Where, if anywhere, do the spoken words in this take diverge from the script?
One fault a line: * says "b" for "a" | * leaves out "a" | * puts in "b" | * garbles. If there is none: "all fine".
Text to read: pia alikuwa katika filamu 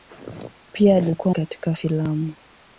all fine